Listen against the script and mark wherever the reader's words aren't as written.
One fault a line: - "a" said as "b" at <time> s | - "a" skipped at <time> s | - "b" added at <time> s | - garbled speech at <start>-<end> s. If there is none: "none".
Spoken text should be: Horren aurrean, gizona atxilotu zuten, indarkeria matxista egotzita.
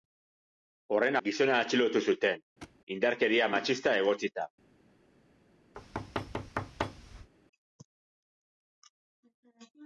- "aurrean" skipped at 1.2 s